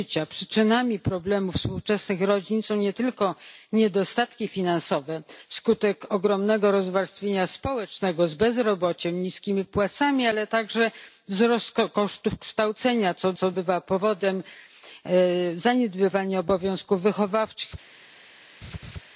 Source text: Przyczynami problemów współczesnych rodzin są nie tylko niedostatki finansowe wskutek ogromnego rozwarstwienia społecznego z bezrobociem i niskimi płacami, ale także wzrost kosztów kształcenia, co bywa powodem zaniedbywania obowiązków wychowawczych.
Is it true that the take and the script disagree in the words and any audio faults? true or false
true